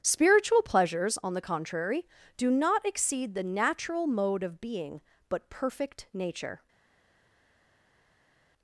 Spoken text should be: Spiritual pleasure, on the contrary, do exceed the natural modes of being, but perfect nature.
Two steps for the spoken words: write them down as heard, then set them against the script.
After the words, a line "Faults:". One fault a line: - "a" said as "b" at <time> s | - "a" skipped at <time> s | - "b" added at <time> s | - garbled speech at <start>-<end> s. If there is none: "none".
Spiritual pleasures, on the contrary, do not exceed the natural mode of being, but perfect nature.
Faults:
- "pleasure" said as "pleasures" at 0.6 s
- "not" added at 2.5 s
- "modes" said as "mode" at 4.1 s